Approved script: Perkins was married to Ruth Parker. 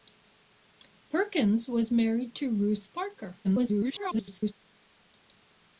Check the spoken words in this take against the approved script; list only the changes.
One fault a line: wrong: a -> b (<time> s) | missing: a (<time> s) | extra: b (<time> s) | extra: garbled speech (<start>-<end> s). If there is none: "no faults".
extra: garbled speech (3.4-4.5 s)